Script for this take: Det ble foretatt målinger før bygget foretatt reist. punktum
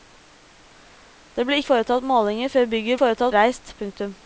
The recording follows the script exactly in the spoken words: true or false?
true